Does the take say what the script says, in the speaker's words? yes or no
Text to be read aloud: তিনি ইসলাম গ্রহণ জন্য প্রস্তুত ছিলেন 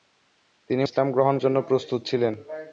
yes